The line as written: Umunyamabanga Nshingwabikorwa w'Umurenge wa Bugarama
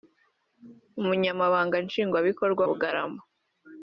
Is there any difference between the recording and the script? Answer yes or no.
yes